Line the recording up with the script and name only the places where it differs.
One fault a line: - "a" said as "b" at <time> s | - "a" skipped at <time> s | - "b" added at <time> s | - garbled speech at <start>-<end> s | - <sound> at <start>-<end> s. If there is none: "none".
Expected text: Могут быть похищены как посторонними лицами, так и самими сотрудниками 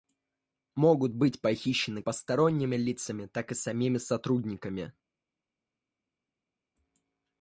- "как" skipped at 2.0 s